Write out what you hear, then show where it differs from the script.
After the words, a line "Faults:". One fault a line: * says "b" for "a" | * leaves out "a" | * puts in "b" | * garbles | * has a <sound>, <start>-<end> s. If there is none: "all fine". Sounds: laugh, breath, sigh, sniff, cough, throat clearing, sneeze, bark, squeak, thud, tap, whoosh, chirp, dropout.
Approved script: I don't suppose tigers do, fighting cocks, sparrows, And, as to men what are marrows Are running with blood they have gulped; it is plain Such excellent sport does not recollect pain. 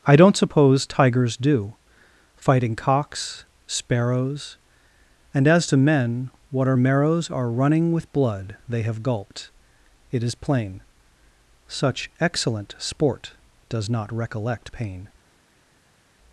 I don't suppose tigers do, fighting cocks, sparrows, And, as to men what are marrows Are running with blood they have gulped; it is plain Such excellent sport does not recollect pain.
Faults:
all fine